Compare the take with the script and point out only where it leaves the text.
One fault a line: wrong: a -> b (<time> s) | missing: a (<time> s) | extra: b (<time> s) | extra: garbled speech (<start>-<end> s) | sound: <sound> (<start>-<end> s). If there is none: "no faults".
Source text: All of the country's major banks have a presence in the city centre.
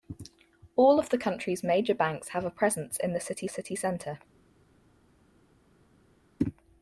extra: city (3.5 s)